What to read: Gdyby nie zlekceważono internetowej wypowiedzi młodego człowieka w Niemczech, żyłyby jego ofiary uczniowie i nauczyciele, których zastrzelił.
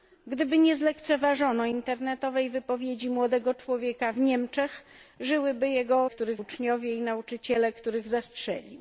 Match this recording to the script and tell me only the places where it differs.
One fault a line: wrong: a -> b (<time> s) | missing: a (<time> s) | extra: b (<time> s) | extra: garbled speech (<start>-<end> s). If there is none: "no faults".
wrong: ofiary -> których (6.1 s)